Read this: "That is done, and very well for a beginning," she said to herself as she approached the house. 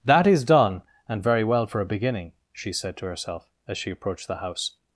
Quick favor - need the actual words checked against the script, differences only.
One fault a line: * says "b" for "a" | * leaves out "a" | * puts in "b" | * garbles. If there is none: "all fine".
all fine